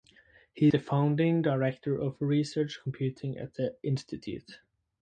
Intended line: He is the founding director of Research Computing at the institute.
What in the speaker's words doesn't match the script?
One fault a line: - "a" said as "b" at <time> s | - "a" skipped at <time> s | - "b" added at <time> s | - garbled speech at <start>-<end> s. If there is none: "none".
- "is" skipped at 0.7 s